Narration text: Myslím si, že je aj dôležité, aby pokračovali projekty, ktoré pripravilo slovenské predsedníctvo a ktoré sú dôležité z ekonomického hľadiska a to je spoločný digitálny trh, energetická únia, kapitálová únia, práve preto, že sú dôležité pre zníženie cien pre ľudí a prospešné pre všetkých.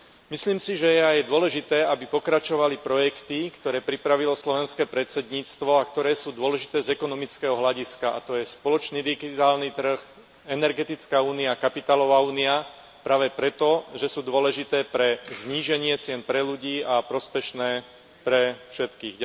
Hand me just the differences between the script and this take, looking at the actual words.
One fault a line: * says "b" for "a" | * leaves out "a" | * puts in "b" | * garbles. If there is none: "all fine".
all fine